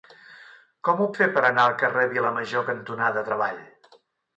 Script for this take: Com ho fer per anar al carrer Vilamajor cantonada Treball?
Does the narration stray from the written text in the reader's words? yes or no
no